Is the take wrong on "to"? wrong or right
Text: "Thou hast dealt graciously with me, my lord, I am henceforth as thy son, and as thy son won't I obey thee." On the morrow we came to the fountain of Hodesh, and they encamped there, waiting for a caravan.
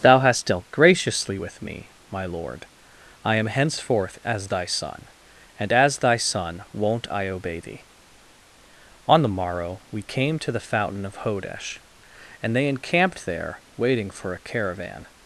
right